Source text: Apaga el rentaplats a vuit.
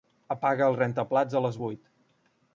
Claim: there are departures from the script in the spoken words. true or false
true